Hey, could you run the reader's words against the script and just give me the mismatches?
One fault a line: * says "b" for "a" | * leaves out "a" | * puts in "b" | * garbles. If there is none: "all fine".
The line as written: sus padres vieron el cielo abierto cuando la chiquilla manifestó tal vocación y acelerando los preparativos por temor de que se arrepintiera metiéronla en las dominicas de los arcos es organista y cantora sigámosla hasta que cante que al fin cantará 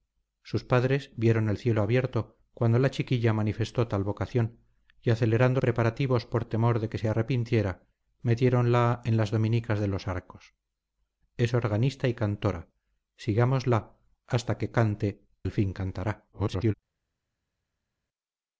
* leaves out "los"
* leaves out "que"
* garbles